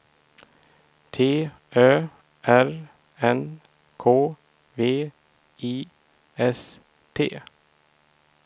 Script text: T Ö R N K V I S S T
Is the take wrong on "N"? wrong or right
right